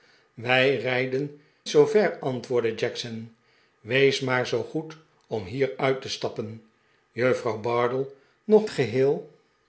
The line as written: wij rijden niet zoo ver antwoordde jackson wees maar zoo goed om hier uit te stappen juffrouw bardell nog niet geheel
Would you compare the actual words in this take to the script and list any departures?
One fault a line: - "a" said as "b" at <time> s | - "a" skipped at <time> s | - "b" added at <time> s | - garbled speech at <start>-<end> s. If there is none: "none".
- "niet" skipped at 1.4 s
- "niet" skipped at 8.7 s